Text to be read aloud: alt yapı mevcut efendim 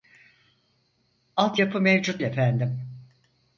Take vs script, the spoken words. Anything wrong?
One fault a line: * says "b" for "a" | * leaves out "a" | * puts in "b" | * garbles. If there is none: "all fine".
all fine